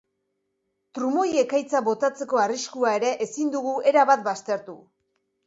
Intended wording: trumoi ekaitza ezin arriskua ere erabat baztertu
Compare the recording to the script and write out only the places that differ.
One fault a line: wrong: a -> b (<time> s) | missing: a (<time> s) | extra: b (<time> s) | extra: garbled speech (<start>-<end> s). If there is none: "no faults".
wrong: ezin -> botatzeko (1.9 s)
extra: ezin dugu (3.3 s)